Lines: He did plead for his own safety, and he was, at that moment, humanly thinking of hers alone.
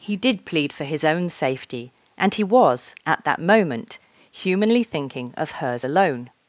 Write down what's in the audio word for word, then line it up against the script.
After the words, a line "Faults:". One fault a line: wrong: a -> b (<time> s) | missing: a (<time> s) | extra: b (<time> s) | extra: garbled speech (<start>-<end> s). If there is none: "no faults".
He did plead for his own safety, and he was, at that moment, humanly thinking of hers alone.
Faults:
no faults